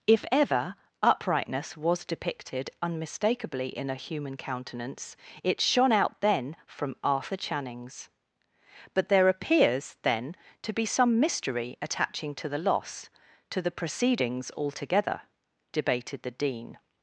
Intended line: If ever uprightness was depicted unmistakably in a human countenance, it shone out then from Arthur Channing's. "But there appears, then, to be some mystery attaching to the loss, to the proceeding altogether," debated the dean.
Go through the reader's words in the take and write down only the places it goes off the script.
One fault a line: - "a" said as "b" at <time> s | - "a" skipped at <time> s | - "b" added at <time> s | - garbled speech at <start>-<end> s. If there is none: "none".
- "proceeding" said as "proceedings" at 13.7 s